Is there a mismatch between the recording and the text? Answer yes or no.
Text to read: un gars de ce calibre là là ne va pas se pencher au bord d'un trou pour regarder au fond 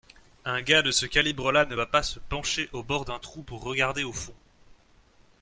yes